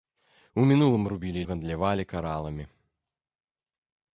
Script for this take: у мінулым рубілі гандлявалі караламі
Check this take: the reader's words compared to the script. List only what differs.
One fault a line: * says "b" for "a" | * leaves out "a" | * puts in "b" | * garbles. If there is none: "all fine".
all fine